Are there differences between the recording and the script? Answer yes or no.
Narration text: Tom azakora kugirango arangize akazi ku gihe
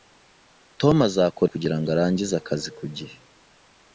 no